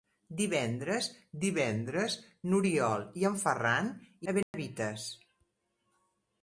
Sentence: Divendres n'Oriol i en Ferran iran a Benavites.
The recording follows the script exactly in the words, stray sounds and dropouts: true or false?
false